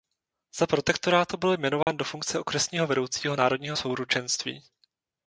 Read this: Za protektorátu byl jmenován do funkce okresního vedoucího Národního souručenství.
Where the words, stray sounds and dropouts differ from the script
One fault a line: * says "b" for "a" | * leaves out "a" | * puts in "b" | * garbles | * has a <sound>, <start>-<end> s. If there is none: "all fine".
* has a dropout, 1.8-1.9 s